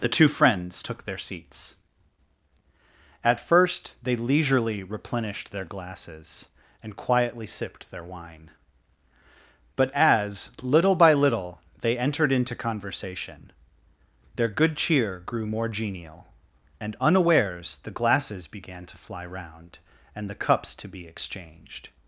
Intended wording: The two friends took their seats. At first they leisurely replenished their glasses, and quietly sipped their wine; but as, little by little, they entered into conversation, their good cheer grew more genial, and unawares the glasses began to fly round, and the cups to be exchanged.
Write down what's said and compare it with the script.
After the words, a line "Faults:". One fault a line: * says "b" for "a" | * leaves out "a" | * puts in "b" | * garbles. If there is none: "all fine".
The two friends took their seats. At first they leisurely replenished their glasses, and quietly sipped their wine; but as, little by little, they entered into conversation, their good cheer grew more genial, and unawares the glasses began to fly round, and the cups to be exchanged.
Faults:
all fine